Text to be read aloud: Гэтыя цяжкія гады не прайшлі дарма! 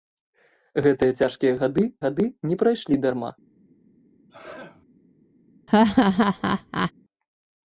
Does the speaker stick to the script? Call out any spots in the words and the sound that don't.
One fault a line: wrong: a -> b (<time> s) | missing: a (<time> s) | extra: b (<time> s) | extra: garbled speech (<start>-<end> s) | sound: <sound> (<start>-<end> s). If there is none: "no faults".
extra: гады (2.0 s)
sound: sneeze (4.3-4.8 s)
sound: laugh (5.7-6.9 s)